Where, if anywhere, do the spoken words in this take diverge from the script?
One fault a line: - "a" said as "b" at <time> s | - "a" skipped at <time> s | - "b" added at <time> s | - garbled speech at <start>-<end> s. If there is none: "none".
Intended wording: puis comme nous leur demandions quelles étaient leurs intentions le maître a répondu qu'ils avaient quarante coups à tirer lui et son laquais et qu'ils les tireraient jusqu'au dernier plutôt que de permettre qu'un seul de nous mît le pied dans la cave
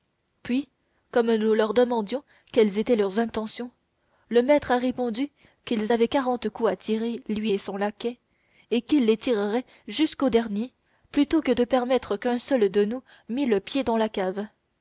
none